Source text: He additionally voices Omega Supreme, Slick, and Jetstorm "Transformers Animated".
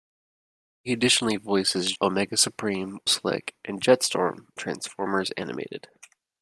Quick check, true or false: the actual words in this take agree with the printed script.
true